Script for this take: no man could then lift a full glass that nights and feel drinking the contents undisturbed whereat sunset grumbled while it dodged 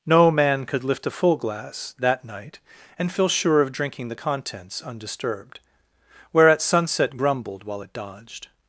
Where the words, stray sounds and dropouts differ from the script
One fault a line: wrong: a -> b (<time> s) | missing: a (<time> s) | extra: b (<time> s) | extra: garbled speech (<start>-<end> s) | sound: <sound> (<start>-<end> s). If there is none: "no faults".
missing: then (0.8 s)
wrong: nights -> night (2.2 s)
extra: sure of (3.3 s)